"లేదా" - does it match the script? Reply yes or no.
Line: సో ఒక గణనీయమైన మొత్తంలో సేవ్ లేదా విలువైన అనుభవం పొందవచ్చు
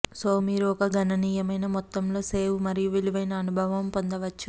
no